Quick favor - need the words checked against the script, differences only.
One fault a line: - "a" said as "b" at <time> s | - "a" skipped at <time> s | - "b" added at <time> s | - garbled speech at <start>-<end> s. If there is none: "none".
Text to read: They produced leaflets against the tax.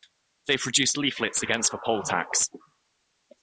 - "poll" added at 1.8 s